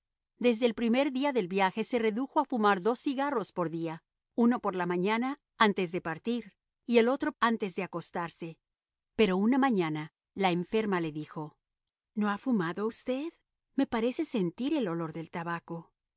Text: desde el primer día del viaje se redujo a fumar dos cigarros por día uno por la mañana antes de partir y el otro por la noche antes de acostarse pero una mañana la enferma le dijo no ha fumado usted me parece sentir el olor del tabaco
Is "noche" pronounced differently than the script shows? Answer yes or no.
yes